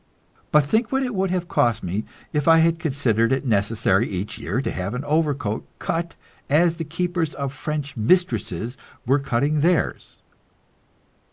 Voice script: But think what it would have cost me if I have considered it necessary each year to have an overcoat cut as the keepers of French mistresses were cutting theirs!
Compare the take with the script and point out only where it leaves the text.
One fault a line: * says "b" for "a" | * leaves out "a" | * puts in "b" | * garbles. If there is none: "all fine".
* says "had" for "have"